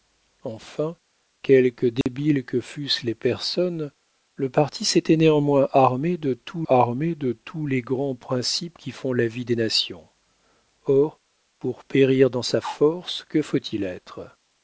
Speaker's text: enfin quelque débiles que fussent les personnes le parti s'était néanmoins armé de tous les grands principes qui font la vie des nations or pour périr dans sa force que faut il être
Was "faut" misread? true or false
false